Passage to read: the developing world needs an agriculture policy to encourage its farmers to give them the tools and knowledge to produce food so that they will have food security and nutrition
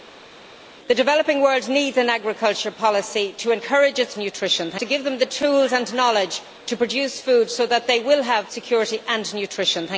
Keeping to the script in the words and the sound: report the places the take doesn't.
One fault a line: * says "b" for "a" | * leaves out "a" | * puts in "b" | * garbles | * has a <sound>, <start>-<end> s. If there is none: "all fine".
* says "nutrition" for "farmers"
* leaves out "food"